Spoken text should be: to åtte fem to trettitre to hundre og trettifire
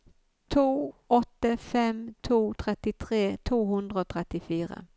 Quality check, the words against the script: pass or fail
pass